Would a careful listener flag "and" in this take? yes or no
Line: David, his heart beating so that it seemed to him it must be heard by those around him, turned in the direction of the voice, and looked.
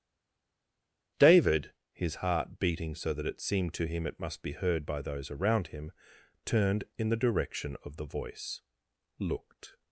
yes